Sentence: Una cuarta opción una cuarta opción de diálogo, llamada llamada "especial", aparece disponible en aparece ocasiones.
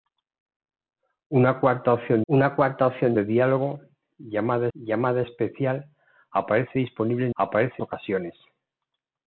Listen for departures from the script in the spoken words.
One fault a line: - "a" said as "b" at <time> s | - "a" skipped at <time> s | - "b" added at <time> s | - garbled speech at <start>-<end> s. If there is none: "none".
none